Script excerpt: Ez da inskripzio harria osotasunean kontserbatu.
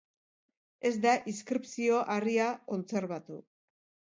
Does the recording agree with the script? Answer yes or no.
no